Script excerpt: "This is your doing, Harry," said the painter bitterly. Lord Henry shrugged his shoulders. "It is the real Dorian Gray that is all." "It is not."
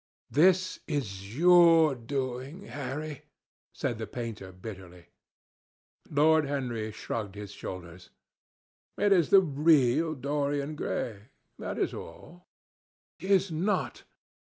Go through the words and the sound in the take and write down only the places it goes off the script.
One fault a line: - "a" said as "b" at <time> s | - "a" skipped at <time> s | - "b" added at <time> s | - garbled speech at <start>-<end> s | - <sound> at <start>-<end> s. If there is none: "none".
- "It" skipped at 12.5 s